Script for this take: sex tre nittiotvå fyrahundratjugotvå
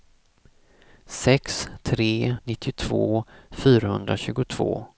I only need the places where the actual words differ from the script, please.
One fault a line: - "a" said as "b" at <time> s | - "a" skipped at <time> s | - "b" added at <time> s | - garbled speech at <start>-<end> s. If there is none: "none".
none